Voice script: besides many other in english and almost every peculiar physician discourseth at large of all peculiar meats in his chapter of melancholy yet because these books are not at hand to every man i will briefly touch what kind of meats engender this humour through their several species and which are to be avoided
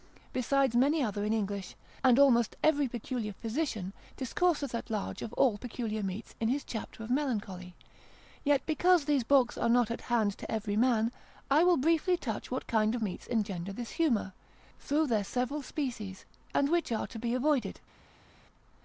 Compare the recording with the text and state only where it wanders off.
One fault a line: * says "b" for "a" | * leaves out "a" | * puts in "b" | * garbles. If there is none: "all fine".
all fine